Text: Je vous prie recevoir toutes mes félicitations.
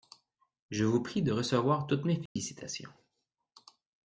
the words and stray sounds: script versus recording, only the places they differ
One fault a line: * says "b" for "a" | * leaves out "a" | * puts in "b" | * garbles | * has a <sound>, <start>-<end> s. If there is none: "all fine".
* puts in "de"
* has a dropout, 2.3-2.4 s